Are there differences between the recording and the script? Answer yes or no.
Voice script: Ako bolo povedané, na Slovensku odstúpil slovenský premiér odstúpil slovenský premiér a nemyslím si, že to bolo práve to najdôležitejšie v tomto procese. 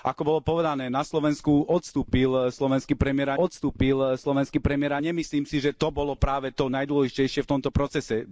no